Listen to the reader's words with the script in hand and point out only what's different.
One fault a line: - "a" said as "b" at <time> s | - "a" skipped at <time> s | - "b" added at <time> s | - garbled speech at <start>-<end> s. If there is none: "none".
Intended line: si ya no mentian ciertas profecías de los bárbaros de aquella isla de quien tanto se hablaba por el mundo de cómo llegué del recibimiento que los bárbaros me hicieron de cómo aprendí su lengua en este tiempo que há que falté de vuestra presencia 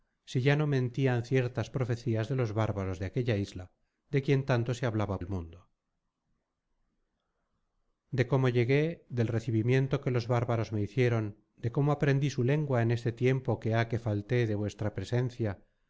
- "por" skipped at 5.2 s